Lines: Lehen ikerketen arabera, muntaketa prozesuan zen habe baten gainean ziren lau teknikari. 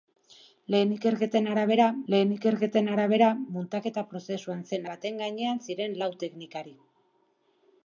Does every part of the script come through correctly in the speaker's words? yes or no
no